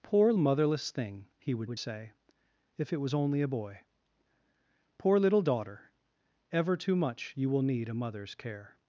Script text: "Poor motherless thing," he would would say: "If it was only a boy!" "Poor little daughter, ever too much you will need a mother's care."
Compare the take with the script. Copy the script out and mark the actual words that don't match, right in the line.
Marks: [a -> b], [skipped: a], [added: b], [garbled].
"Poor motherless thing," he would would say: "If it was only a boy!" "Poor little daughter, ever too much you will need a mother's care."